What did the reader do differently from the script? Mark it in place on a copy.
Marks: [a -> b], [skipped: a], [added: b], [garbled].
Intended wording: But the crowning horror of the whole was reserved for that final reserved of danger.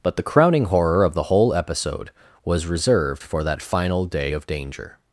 But the crowning horror of the whole [added: episode] was reserved for that final [reserved -> day] of danger.